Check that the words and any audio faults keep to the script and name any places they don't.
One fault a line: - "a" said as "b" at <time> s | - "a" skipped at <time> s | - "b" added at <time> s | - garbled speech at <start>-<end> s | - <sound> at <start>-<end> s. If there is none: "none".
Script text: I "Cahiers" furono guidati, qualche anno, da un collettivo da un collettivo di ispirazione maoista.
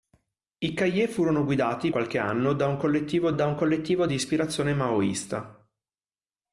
none